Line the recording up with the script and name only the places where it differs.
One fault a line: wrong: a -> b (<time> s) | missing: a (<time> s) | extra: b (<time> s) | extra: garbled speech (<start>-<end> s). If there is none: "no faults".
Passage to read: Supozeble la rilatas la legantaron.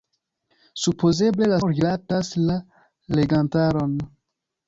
no faults